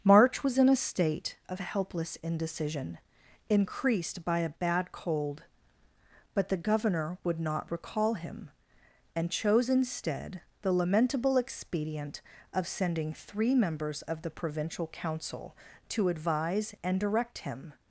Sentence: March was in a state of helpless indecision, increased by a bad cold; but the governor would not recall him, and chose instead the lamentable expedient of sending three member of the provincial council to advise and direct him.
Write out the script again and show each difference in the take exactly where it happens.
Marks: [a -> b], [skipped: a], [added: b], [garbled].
March was in a state of helpless indecision, increased by a bad cold; but the governor would not recall him, and chose instead the lamentable expedient of sending three [member -> members] of the provincial council to advise and direct him.